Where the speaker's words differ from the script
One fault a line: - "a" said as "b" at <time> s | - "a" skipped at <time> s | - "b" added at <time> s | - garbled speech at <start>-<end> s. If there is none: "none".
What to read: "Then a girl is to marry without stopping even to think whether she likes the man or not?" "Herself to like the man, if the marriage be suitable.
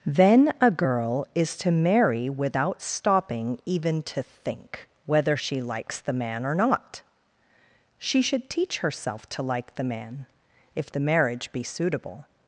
- "She should teach" added at 8.0 s